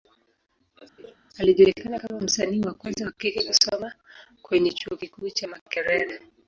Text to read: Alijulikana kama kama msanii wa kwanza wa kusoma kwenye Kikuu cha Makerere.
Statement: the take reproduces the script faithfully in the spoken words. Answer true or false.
false